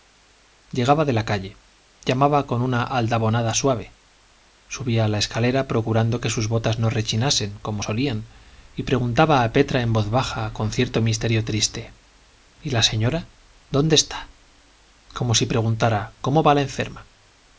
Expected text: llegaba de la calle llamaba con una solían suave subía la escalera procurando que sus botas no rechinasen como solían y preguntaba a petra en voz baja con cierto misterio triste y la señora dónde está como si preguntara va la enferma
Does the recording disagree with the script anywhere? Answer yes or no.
yes